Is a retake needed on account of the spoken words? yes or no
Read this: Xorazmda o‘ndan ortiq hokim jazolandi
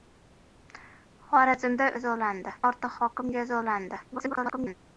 yes